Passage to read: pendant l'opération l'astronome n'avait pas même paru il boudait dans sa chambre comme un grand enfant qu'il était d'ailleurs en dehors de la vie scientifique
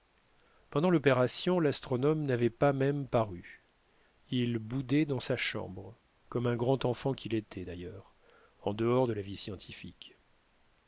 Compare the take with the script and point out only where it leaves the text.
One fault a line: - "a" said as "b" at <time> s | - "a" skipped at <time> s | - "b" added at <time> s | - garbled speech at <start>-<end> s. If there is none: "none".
none